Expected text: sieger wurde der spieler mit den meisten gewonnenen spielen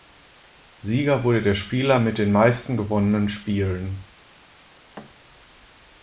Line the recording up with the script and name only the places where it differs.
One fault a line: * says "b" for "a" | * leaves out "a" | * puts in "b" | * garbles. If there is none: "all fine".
all fine